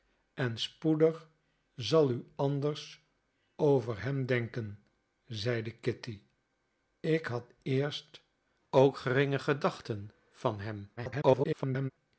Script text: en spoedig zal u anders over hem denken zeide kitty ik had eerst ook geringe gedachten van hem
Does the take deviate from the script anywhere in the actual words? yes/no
yes